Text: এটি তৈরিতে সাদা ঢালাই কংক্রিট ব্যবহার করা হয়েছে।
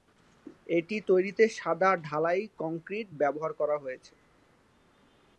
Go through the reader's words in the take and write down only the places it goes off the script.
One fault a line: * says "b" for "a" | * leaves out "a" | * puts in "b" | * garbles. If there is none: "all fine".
all fine